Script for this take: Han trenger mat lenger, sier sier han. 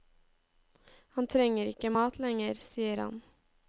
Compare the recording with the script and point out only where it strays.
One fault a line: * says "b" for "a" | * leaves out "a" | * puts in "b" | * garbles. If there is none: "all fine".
* puts in "ikke"
* leaves out "sier"